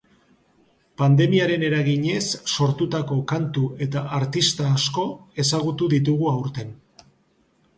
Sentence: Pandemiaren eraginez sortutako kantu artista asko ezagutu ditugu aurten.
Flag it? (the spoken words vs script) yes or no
yes